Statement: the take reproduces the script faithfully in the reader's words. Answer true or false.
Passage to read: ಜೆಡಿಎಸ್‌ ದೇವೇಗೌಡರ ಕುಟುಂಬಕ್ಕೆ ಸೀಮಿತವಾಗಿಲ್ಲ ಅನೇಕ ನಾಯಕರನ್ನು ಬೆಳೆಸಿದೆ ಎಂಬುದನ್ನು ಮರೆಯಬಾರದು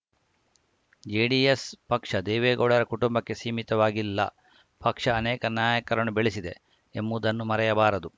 false